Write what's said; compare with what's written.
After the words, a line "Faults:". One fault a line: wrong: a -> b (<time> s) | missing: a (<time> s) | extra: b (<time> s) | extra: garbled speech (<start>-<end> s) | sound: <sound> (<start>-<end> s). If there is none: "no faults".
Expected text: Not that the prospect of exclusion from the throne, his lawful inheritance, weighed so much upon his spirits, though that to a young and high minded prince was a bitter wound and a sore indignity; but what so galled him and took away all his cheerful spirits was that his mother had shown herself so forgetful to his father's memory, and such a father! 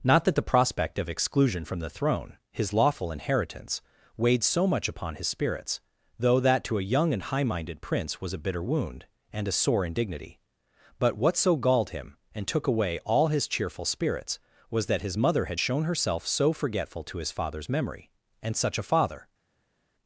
Not that the prospect of exclusion from the throne, his lawful inheritance, weighed so much upon his spirits, though that to a young and high minded prince was a bitter wound and a sore indignity; but what so galled him and took away all his cheerful spirits was that his mother had shown herself so forgetful to his father's memory, and such a father!
Faults:
no faults